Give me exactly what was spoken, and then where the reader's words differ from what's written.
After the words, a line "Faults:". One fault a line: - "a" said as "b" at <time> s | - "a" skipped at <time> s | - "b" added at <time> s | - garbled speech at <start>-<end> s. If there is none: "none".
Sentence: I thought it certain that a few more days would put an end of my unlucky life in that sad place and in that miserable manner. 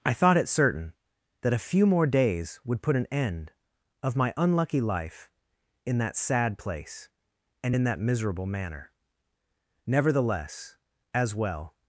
I thought it certain that a few more days would put an end of my unlucky life in that sad place and in that miserable manner. Nevertheless, as well
Faults:
- "Nevertheless as well" added at 9.9 s